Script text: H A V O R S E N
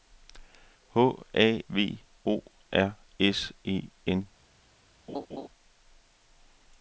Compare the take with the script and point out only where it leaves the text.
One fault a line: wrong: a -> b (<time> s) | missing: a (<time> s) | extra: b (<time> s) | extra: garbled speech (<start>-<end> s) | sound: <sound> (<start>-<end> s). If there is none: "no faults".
sound: laugh (5.1-5.5 s)